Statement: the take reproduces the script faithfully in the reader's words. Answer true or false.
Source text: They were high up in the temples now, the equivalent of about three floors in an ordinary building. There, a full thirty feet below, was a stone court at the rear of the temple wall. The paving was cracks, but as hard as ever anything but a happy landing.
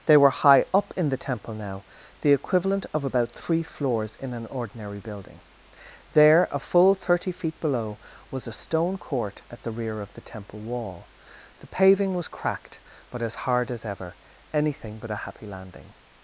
false